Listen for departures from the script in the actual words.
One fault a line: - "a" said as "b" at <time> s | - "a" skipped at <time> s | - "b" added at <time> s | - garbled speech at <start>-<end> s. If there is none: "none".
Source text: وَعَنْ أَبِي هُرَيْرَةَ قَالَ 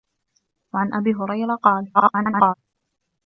- garbled speech at 1.9-2.5 s